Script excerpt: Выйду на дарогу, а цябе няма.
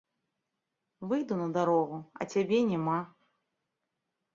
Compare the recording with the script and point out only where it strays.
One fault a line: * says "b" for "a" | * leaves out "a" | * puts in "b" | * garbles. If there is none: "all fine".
all fine